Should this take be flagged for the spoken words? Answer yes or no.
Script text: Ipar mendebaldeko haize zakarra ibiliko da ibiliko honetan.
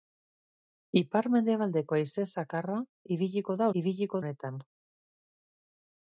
no